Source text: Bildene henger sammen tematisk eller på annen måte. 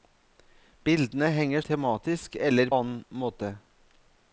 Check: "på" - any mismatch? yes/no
yes